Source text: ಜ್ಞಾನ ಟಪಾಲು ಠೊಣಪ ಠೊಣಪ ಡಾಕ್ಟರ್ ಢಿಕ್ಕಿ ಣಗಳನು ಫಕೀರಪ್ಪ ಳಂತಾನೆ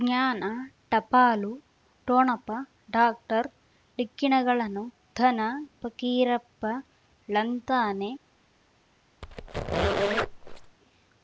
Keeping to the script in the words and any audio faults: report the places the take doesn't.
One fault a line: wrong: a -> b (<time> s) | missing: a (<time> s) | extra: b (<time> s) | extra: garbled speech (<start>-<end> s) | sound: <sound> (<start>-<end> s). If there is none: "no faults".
missing: ಠೊಣಪ (2.5 s)
extra: ಧನ (5.2 s)
sound: squeak (9.2-10.8 s)